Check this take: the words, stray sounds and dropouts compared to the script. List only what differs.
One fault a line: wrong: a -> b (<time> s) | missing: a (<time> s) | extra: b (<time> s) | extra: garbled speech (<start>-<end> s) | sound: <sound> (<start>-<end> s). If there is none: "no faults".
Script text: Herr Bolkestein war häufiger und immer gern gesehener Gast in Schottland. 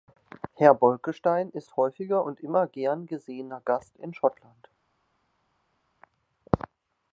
wrong: war -> ist (1.5 s)